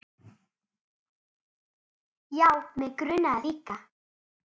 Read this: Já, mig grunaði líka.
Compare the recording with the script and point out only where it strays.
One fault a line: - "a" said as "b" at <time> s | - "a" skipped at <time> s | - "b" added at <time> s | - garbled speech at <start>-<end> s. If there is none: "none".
none